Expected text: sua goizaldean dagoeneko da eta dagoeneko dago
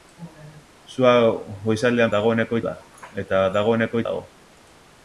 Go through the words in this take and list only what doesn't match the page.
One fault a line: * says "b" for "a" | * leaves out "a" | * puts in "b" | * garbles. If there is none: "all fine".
all fine